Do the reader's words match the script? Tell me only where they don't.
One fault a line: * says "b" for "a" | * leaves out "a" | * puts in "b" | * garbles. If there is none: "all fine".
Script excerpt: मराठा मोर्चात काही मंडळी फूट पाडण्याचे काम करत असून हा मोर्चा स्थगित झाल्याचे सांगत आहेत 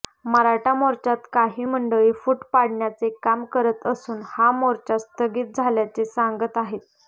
all fine